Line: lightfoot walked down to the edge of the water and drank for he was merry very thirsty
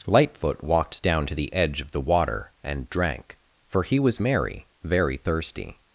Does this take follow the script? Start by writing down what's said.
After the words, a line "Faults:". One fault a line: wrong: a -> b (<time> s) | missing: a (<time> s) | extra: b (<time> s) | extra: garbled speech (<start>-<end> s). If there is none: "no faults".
lightfoot walked down to the edge of the water and drank for he was merry very thirsty
Faults:
no faults